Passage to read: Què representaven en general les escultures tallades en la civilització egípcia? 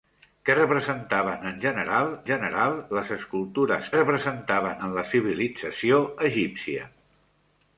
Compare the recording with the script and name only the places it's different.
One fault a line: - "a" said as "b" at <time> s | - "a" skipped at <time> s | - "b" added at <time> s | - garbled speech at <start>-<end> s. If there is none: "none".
- "general" added at 2.3 s
- "tallades" said as "representaven" at 4.0 s